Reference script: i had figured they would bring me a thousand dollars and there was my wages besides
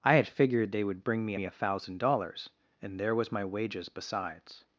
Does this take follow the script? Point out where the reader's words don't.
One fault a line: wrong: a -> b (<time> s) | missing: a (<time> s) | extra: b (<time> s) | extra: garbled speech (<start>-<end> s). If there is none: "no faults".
extra: me (1.3 s)